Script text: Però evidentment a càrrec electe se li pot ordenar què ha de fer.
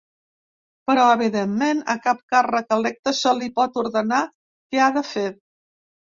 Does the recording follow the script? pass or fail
fail